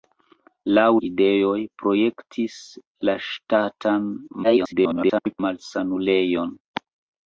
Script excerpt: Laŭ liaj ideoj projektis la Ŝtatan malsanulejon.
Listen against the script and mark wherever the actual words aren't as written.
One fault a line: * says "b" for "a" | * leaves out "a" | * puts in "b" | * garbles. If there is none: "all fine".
* leaves out "liaj"
* garbles